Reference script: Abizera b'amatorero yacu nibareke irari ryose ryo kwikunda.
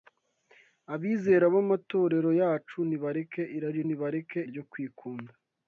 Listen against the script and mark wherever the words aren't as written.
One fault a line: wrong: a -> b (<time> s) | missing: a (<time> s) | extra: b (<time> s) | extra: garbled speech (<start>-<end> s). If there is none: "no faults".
wrong: ryose -> nibareke (3.9 s)